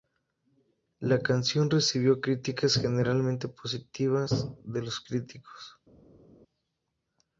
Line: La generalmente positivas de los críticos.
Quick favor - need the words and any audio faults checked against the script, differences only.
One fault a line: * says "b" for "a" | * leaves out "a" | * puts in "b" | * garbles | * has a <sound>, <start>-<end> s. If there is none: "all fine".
* puts in "canción recibió críticas"